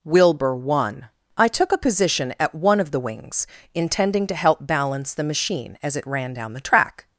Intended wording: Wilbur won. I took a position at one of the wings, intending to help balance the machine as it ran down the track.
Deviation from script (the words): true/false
false